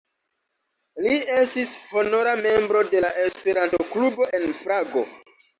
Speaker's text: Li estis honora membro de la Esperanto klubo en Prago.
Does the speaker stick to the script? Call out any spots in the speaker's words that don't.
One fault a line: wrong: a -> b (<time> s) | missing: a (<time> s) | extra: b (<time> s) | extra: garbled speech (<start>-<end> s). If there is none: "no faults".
no faults